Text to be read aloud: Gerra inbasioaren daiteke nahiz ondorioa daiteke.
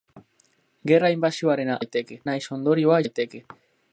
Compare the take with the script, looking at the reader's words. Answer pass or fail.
pass